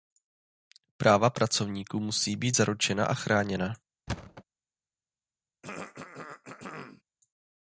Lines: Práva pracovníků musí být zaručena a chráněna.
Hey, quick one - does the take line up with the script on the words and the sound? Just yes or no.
no